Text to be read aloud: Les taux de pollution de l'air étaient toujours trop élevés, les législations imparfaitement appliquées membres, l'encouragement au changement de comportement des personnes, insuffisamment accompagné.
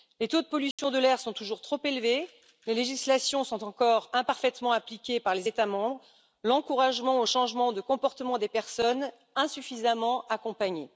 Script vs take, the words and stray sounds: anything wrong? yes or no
yes